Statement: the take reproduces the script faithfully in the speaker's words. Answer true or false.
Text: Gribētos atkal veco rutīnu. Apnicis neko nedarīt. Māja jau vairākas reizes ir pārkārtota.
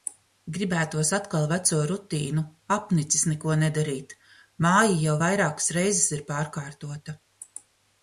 true